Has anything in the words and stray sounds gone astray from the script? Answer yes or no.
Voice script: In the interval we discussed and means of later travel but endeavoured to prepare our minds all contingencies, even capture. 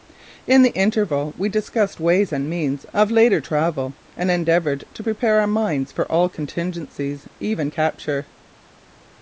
yes